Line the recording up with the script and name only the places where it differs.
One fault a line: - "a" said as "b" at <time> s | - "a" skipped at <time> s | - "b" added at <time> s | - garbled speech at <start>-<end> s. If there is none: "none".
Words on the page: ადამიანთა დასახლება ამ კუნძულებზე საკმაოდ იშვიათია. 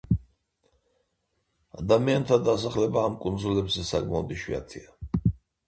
none